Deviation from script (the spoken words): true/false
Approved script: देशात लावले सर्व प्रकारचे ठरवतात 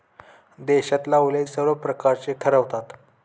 false